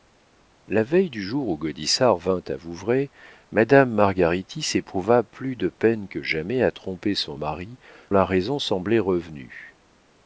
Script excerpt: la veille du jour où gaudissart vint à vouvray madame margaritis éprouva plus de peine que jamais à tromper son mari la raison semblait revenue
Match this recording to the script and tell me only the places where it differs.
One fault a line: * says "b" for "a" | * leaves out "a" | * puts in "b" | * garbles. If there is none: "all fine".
all fine